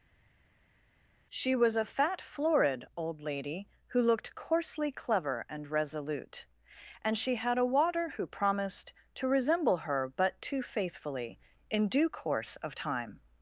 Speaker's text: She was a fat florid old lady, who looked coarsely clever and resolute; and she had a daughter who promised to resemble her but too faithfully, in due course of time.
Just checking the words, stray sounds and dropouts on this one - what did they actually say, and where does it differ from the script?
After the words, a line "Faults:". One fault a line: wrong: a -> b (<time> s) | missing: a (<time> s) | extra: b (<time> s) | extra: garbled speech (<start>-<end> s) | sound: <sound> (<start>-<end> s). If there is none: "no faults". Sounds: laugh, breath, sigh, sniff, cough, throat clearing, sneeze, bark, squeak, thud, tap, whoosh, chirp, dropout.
She was a fat florid old lady, who looked coarsely clever and resolute; and she had a water who promised to resemble her but too faithfully, in due course of time.
Faults:
wrong: daughter -> water (7.7 s)